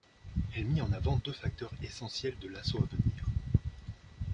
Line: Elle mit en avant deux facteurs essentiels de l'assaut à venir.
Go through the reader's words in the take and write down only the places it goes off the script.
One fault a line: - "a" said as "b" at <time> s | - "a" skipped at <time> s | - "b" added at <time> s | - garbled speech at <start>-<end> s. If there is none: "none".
none